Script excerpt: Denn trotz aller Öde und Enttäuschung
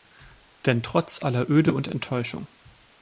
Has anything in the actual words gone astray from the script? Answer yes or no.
no